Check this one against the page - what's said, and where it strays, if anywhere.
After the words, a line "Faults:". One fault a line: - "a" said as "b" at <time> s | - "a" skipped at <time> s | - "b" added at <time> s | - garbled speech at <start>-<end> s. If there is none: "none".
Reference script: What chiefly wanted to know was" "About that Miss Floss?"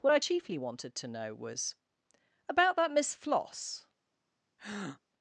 What I chiefly wanted to know was" "About that Miss Floss?"
Faults:
- "I" added at 0.1 s